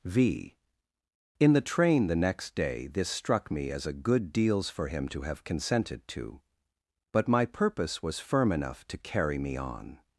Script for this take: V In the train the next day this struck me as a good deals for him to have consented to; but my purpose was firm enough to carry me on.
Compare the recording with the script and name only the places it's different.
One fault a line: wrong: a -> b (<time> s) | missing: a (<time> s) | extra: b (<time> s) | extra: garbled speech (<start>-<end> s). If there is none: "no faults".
no faults